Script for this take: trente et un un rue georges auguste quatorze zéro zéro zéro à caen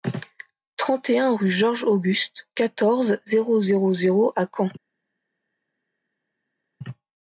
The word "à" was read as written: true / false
true